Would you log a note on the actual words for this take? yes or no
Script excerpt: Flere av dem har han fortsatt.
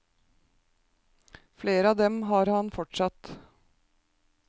no